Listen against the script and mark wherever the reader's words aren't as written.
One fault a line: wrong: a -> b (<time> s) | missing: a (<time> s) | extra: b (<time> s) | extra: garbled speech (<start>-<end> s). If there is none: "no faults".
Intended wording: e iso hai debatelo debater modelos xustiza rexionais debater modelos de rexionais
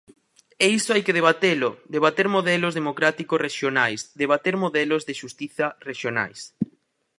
extra: que (1.1 s)
wrong: xustiza -> democráticos (2.8 s)
extra: xustiza (5.2 s)